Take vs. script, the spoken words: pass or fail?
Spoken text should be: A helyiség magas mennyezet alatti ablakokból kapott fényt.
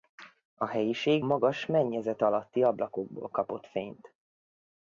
pass